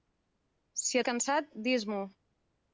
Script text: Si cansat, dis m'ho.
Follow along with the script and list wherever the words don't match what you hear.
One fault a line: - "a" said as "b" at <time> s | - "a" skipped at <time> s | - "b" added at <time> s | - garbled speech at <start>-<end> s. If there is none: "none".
none